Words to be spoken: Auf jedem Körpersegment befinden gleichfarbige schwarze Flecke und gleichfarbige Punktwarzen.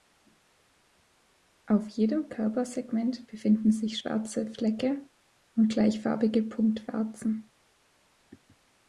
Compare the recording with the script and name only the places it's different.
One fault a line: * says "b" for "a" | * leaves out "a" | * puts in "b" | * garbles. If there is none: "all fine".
* says "sich" for "gleichfarbige"